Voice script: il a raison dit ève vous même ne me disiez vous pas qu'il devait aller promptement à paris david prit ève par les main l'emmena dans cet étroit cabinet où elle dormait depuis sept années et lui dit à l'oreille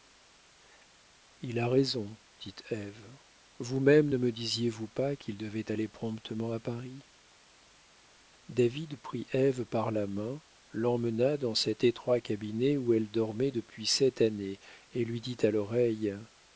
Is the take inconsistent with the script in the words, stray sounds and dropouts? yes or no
yes